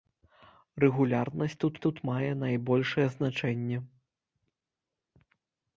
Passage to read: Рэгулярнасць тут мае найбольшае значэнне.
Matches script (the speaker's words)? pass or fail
fail